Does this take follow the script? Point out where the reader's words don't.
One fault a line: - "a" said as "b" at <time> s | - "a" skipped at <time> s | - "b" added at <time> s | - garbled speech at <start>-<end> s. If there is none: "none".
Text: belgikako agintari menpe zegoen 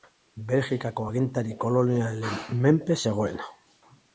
- "kolonialen" added at 1.6 s